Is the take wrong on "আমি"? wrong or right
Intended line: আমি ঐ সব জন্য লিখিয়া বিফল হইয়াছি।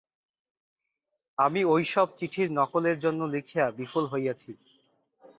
right